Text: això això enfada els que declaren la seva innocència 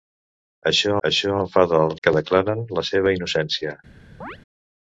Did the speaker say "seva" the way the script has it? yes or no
yes